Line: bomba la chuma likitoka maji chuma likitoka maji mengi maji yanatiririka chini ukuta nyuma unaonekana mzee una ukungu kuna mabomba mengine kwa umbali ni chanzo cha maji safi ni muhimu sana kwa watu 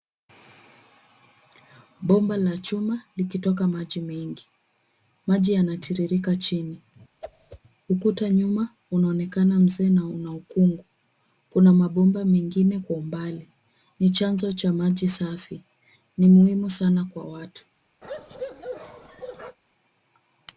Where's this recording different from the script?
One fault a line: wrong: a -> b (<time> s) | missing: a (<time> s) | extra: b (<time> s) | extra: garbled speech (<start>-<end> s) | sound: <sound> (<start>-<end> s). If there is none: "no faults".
missing: chuma likitoka maji (4.0 s)
sound: whoosh (7.2-7.6 s)
extra: na (9.9 s)
sound: bark (18.0-19.6 s)